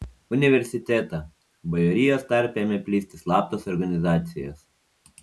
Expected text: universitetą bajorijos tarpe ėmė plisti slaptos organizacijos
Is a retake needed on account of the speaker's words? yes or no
no